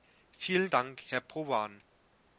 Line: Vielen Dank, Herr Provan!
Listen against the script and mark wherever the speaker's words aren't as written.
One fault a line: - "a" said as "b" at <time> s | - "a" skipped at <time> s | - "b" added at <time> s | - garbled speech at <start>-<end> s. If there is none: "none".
none